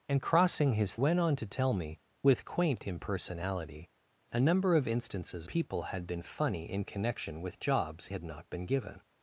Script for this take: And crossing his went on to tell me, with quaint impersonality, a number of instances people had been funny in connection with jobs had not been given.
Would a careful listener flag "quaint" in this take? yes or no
no